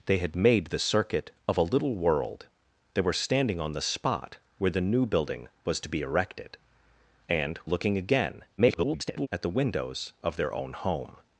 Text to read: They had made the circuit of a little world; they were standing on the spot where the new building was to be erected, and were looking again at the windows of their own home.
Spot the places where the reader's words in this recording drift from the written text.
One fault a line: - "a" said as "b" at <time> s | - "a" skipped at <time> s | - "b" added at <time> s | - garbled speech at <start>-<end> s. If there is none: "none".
- "were" skipped at 7.6 s
- garbled speech at 8.6-9.3 s